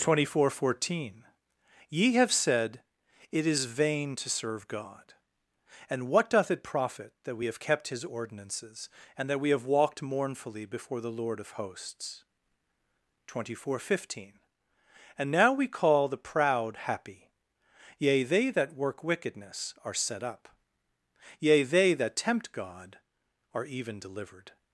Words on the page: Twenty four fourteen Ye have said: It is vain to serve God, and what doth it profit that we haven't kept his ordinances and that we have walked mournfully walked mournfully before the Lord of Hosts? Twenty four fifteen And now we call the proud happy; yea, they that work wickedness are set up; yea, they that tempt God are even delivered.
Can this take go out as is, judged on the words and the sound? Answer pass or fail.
fail